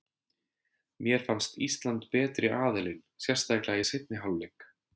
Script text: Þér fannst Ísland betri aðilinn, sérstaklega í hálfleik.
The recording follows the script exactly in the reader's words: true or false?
false